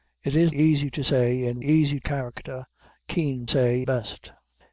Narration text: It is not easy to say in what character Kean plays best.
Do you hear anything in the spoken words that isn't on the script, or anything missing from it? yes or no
yes